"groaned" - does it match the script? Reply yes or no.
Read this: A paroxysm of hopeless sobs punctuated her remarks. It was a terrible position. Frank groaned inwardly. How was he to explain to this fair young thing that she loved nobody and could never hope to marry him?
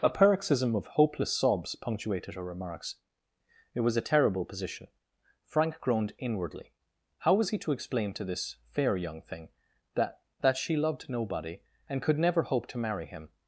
yes